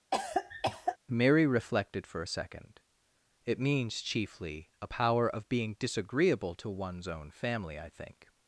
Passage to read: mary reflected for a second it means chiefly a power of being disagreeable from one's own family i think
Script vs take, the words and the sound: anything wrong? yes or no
yes